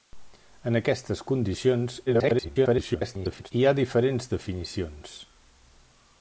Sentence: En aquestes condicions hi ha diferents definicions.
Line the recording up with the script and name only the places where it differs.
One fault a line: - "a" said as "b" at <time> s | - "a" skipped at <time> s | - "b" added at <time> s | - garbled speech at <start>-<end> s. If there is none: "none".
- garbled speech at 2.1-3.5 s